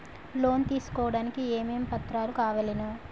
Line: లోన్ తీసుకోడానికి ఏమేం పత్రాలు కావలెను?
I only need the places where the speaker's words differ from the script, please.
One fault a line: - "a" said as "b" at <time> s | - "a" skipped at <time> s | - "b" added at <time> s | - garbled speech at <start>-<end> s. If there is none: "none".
none